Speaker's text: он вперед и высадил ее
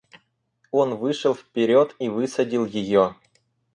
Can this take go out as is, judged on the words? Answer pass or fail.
fail